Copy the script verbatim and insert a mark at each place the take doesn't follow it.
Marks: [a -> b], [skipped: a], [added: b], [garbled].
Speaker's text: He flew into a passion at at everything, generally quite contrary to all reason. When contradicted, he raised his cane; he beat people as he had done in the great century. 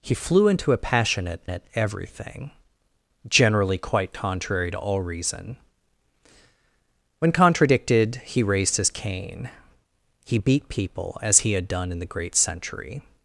He flew into a passion at at everything, generally quite contrary to all reason. When contradicted, he raised his cane; he beat people as he had done in the great century.